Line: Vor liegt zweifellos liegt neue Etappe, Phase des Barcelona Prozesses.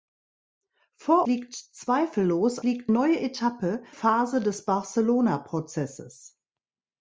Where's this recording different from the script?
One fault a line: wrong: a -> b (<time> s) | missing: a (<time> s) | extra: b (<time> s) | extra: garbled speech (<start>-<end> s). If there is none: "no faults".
no faults